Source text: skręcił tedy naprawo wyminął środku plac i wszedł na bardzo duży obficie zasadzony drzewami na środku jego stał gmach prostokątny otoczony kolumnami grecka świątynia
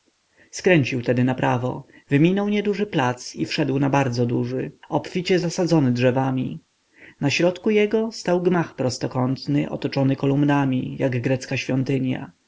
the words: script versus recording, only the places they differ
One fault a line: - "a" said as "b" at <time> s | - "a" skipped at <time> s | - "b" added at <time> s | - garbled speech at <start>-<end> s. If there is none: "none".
- "środku" said as "nieduży" at 2.5 s
- "jak" added at 11.0 s